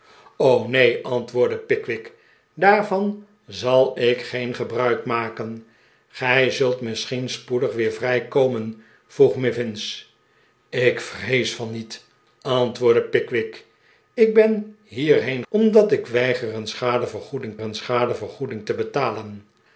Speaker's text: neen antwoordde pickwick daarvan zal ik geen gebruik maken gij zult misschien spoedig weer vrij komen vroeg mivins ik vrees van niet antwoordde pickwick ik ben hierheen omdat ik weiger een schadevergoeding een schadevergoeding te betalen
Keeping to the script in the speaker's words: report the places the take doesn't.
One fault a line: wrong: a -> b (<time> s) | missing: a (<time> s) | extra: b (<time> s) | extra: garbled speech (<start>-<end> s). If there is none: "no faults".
no faults